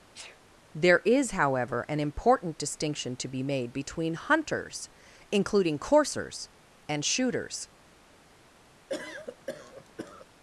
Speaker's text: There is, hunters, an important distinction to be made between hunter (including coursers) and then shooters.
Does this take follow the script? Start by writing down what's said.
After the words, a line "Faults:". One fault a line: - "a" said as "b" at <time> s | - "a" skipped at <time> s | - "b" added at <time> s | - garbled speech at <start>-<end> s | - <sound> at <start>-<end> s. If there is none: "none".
There is, however, an important distinction to be made between hunters (including coursers) and shooters.
Faults:
- sneeze at 0.1-0.4 s
- "hunters" said as "however" at 1.3 s
- "hunter" said as "hunters" at 4.1 s
- "then" skipped at 7.0 s
- cough at 8.9-10.3 s